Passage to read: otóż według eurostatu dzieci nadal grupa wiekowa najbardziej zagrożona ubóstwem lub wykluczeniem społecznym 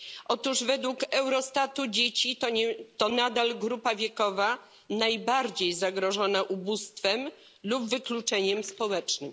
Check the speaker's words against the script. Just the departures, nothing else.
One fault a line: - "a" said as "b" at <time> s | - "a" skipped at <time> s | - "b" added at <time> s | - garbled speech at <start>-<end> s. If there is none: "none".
- "to" added at 3.0 s